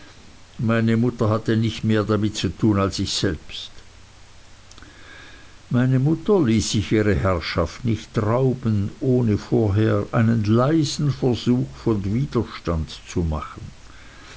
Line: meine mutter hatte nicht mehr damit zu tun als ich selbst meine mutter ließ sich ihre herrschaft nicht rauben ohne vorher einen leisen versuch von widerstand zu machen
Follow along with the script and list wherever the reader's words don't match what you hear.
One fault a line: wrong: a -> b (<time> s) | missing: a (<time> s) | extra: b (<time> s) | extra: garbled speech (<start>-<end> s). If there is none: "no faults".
no faults